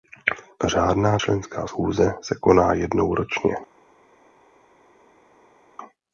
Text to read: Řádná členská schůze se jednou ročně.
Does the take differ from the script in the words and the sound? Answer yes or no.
yes